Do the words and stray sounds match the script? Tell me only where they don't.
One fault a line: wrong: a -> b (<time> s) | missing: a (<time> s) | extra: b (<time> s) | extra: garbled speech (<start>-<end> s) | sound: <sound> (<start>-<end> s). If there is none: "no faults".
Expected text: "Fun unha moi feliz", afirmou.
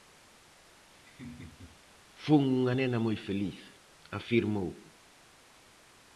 sound: laugh (1.0-1.8 s)
extra: nena (2.8 s)